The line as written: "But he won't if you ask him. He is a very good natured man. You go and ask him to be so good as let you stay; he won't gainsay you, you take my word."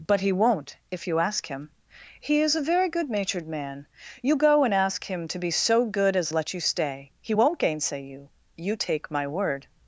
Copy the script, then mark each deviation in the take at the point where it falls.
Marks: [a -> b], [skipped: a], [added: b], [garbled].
"But he won't if you ask him. He is a very good natured man. You go and ask him to be so good as let you stay; he won't gainsay you, you take my word."